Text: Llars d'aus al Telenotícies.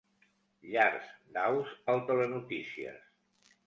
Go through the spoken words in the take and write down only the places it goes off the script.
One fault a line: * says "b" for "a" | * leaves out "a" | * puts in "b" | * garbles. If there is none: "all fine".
all fine